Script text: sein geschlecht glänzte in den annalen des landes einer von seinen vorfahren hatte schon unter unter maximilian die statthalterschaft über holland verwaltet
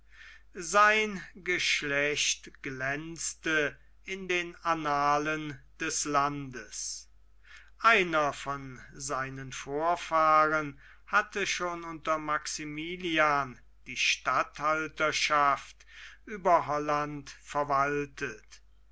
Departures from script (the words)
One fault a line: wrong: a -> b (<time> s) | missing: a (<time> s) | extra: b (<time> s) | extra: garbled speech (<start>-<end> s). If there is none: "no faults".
missing: unter (12.2 s)